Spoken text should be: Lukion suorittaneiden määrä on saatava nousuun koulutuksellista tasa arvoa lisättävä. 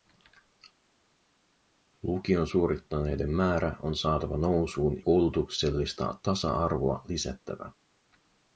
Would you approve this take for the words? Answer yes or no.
yes